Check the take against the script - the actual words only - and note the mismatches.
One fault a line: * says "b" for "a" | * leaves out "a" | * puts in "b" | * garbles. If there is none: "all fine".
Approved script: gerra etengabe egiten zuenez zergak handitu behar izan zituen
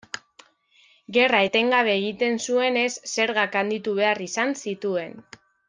all fine